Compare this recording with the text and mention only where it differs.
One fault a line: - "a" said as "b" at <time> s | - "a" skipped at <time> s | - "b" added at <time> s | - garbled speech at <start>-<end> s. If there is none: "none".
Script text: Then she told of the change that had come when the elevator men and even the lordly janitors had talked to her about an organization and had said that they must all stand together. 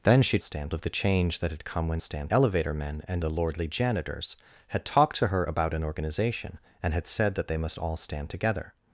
- "told" said as "stand" at 0.4 s
- "the" said as "stand" at 2.0 s
- "even" skipped at 3.2 s